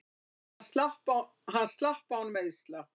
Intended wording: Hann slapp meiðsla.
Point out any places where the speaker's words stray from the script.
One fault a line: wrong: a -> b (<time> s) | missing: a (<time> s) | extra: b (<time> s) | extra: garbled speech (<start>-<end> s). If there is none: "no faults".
extra: án (2.2 s)